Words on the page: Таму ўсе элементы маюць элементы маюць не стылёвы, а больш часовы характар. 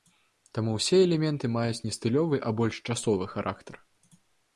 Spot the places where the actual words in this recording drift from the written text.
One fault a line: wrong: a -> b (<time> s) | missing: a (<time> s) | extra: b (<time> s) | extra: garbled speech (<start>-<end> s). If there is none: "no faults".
missing: элементы маюць (1.8 s)